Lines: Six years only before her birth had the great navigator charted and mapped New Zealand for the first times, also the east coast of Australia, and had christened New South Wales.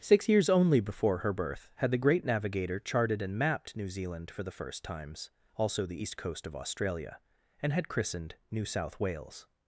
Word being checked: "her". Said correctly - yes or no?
yes